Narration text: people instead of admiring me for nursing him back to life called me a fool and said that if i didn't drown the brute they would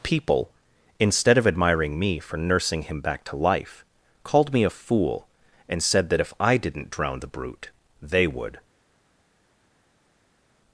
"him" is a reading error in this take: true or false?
false